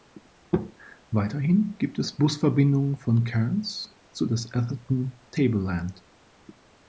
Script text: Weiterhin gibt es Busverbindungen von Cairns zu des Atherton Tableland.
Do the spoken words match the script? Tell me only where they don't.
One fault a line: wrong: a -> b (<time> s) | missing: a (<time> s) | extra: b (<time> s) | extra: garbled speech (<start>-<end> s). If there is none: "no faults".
no faults